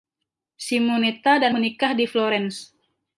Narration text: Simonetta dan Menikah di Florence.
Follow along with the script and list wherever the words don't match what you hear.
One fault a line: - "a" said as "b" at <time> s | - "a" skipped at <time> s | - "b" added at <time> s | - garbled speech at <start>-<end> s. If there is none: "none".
none